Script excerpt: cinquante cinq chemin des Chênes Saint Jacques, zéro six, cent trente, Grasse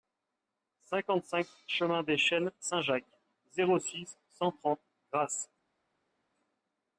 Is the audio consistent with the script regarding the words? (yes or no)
yes